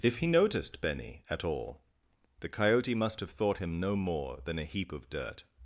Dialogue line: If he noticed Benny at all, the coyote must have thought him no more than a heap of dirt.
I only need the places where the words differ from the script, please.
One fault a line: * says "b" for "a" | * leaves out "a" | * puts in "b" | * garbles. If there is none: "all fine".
all fine